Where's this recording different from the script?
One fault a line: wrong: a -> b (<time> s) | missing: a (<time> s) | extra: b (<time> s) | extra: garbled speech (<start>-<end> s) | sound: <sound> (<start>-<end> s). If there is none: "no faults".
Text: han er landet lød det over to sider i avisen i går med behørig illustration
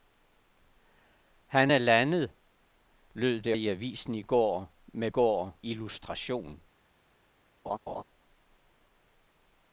missing: over to sider (3.6 s)
wrong: behørig -> går (5.1 s)
sound: laugh (7.7-8.0 s)